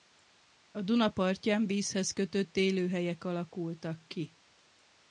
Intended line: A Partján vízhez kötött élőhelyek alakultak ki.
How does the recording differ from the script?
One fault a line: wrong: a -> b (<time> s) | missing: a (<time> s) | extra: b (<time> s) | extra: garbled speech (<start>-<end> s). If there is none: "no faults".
extra: Duna (0.8 s)